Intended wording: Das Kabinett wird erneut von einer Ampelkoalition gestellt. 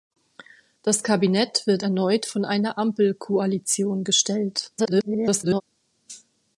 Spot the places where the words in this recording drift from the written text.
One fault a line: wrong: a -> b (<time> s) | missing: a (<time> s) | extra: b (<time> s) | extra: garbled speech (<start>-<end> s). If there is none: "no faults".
extra: garbled speech (4.8-5.6 s)